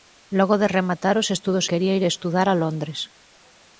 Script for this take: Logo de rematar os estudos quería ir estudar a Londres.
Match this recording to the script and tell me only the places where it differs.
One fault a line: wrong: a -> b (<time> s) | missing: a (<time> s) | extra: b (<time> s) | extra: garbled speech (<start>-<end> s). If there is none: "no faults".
no faults